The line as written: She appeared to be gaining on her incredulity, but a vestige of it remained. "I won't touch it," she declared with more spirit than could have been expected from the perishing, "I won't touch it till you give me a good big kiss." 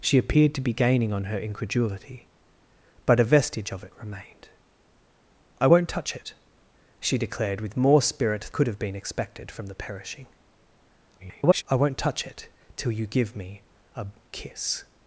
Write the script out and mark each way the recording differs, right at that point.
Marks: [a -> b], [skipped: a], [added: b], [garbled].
She appeared to be gaining on her incredulity, but a vestige of it remained. "I won't touch it," she declared with more spirit [skipped: than] could have been expected from the perishing, [garbled] "I won't touch it till you give me a [skipped: good big] kiss."